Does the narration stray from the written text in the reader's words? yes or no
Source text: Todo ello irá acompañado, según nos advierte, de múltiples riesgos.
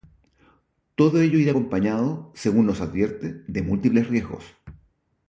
no